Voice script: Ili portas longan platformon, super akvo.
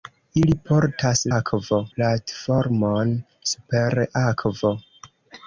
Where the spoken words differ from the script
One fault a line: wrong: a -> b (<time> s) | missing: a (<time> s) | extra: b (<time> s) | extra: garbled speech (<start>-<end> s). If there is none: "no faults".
wrong: longan -> akvo (1.3 s)